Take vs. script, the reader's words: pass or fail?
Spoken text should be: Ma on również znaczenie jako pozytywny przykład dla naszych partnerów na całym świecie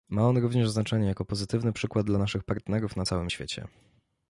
pass